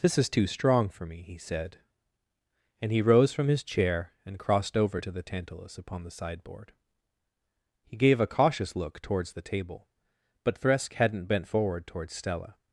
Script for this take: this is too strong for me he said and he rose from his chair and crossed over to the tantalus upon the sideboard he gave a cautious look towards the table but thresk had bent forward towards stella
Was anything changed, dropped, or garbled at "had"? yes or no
yes